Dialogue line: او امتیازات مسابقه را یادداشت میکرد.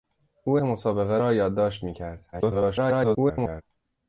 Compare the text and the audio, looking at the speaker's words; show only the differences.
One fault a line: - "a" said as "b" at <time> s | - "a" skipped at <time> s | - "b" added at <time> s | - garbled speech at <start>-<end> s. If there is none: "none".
- "امتیازات" skipped at 0.6 s
- garbled speech at 2.3-3.6 s